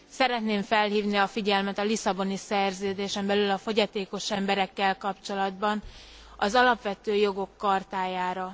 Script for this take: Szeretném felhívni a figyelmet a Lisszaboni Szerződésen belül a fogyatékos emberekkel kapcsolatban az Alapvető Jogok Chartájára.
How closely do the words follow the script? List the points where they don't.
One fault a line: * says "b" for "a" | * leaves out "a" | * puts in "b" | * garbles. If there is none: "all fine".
all fine